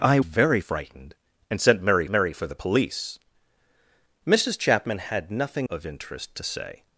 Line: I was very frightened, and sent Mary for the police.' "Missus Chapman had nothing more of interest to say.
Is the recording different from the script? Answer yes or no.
yes